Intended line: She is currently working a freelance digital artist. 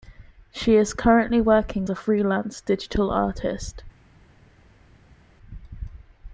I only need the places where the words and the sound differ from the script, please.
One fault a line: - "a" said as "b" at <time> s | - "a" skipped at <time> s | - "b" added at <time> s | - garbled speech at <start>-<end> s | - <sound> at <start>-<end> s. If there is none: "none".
none